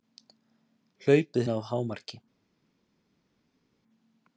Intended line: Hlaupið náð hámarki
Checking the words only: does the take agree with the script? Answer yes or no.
yes